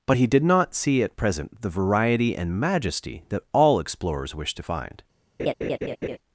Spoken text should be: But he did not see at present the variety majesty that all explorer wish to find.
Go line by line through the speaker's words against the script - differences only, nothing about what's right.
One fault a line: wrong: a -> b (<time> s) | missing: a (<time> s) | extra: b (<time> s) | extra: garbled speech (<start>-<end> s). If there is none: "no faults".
extra: and (2.3 s)
wrong: explorer -> explorers (3.8 s)